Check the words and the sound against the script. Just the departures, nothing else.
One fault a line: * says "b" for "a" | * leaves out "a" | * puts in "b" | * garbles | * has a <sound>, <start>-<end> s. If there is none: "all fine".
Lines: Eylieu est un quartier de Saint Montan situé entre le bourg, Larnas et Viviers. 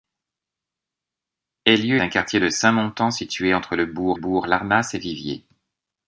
* leaves out "est"
* puts in "bourg"